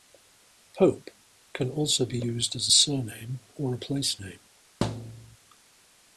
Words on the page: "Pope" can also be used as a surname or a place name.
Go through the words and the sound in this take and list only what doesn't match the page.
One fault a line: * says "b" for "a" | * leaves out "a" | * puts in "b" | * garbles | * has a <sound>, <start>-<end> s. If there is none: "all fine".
* has a thud, 4.8-5.4 s